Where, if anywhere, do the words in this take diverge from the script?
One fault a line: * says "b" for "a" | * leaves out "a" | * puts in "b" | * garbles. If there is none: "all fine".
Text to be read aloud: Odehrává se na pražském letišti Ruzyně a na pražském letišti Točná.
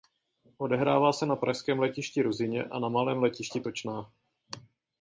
* says "malém" for "pražském"